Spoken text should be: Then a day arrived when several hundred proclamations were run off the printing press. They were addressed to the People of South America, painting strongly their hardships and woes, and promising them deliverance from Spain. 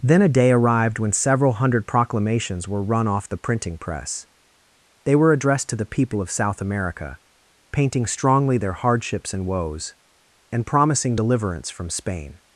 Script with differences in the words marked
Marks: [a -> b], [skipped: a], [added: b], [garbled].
Then a day arrived when several hundred proclamations were run off the printing press. They were addressed to the People of South America, painting strongly their hardships and woes, and promising [skipped: them] deliverance from Spain.